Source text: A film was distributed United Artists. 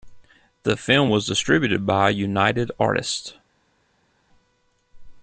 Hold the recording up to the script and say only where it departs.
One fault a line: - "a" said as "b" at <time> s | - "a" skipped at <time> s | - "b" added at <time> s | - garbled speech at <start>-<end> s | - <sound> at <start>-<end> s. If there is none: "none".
- "A" said as "The" at 0.6 s
- "by" added at 1.8 s